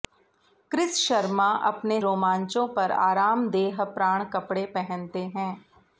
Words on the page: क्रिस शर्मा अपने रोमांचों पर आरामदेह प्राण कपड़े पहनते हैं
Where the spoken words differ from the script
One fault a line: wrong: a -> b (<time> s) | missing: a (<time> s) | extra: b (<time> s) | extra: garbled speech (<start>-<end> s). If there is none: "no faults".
no faults